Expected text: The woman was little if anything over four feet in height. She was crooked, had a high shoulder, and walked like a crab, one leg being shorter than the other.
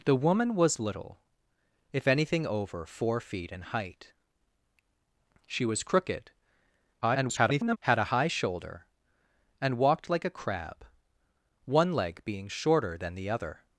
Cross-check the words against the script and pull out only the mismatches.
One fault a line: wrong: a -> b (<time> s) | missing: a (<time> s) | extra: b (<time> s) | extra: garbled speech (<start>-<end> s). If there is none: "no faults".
extra: garbled speech (7.0-7.8 s)